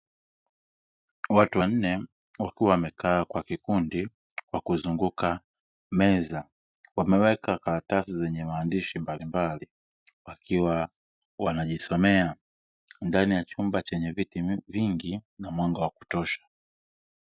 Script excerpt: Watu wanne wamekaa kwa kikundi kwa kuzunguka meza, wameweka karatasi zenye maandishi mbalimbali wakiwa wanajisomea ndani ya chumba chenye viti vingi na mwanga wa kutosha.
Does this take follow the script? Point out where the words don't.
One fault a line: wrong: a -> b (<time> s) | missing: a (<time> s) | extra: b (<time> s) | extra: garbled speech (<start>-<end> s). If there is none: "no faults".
extra: wakiwa (2.4 s)